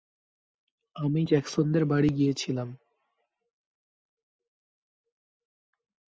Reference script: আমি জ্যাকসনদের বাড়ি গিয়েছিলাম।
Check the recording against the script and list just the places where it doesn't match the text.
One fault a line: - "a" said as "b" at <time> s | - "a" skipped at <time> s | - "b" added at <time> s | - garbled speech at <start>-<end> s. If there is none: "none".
none